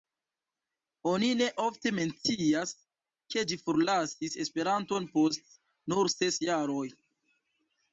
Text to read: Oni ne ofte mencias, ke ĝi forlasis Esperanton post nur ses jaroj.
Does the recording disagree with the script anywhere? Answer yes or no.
no